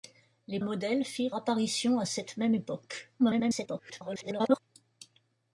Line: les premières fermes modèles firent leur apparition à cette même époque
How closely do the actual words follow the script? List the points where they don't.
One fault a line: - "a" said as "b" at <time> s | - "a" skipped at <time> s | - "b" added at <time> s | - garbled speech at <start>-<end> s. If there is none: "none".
- "premières fermes" skipped at 0.6 s
- "leur" skipped at 1.4 s
- garbled speech at 3.2-4.6 s